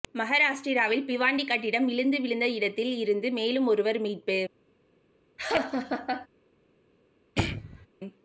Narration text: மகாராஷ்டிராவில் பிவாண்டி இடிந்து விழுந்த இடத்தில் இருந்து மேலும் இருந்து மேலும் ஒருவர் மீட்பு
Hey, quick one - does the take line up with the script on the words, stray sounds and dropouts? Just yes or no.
no